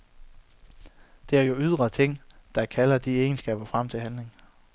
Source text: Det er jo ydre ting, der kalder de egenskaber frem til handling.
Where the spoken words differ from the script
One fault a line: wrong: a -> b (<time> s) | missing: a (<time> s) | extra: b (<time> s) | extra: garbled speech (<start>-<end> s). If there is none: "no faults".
no faults